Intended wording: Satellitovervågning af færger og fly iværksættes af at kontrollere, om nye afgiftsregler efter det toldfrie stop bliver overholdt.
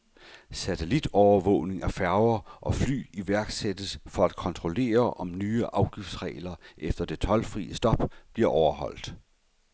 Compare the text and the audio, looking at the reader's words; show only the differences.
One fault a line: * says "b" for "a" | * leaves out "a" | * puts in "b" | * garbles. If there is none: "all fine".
* says "for" for "af"